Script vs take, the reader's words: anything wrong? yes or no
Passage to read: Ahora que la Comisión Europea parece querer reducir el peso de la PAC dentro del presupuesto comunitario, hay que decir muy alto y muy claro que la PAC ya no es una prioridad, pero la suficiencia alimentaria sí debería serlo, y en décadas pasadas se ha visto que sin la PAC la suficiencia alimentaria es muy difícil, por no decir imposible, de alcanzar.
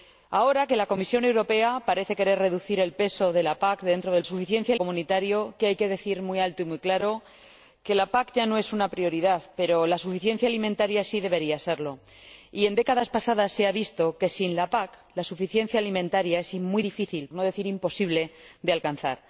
yes